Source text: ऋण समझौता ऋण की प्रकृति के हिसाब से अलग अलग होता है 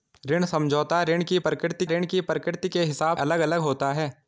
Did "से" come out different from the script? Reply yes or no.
yes